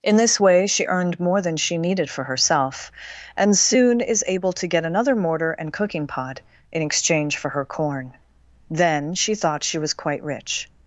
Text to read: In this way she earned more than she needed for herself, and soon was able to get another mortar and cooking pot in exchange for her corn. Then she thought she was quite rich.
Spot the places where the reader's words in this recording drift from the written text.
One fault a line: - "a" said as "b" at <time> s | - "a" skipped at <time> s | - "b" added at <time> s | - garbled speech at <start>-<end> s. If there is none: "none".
- "was" said as "is" at 4.0 s